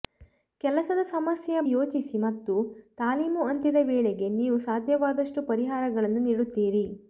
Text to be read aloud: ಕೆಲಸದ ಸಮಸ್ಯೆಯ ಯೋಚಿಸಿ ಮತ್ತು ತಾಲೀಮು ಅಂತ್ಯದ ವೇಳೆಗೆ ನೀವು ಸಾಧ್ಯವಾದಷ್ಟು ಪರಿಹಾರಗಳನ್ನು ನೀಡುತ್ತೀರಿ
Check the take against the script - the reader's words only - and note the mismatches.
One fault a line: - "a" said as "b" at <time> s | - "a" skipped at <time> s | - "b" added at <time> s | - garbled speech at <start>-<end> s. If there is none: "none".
none